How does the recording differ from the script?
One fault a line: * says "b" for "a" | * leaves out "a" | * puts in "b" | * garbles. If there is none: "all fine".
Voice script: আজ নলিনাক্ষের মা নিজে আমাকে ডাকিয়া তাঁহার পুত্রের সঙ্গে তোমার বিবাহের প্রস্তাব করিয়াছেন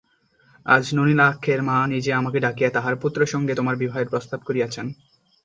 all fine